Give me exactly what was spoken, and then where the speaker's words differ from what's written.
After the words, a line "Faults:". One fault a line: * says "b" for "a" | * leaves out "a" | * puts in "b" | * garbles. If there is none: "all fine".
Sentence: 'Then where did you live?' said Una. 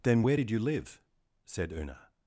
'Then where did you live?' said Una.
Faults:
all fine